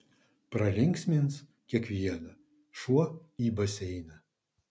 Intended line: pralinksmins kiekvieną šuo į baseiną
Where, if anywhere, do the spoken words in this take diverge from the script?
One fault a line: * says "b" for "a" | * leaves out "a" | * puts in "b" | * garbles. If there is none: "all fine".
all fine